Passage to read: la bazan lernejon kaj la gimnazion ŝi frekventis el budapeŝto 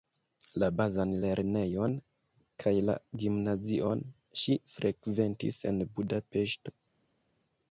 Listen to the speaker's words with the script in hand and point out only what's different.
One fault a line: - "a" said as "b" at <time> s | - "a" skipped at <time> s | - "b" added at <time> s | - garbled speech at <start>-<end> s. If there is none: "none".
- "el" said as "en" at 5.7 s